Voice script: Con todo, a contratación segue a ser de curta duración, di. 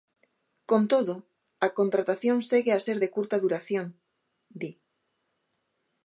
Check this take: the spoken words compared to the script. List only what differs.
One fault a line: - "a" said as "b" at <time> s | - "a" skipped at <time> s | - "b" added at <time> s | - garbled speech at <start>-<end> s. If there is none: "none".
none